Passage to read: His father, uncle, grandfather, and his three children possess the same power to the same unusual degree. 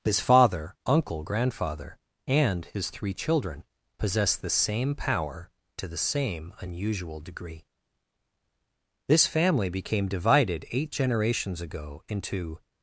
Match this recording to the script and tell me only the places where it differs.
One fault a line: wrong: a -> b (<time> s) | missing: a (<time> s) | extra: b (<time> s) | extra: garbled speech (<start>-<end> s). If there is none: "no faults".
extra: This family became divided eight generations ago into (9.1 s)